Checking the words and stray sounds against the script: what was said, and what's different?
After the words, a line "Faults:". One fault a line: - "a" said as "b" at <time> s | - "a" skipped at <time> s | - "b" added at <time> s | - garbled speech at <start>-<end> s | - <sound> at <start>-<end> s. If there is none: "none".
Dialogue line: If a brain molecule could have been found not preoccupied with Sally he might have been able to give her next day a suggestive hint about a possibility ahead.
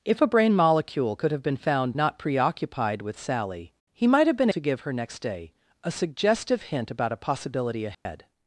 If a brain molecule could have been found not preoccupied with Sally he might have been to give her next day a suggestive hint about a possibility ahead.
Faults:
- "able" skipped at 4.5 s
- dropout at 7.9-8.1 s